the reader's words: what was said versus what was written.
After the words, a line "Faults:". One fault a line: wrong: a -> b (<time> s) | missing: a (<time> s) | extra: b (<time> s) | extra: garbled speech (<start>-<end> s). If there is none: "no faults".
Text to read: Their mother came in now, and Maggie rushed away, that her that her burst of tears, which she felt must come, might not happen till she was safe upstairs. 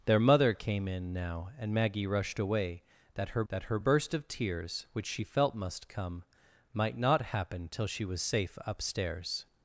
Their mother came in now, and Maggie rushed away, that her that her burst of tears, which she felt must come, might not happen till she was safe upstairs.
Faults:
no faults